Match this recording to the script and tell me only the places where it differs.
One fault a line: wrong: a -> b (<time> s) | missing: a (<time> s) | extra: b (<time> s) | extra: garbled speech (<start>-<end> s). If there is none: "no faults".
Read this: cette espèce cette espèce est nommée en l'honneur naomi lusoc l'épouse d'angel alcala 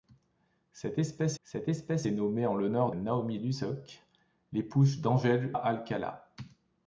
no faults